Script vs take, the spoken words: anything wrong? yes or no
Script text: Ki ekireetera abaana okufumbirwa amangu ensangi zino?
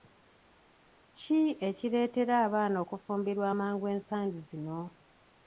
no